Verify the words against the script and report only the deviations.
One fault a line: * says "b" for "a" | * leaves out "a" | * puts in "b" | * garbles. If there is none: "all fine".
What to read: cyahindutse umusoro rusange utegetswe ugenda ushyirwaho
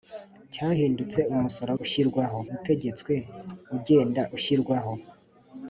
* says "ushyirwaho" for "rusange"